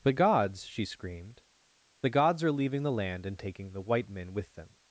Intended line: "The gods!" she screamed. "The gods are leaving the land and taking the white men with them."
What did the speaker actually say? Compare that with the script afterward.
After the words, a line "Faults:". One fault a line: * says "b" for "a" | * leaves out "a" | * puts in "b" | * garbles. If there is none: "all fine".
"The gods!" she screamed. "The gods are leaving the land and taking the white men with them."
Faults:
all fine